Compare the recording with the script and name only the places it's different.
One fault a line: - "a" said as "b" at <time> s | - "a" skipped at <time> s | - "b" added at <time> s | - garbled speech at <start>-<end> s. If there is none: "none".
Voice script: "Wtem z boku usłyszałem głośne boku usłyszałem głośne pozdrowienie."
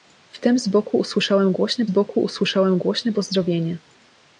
none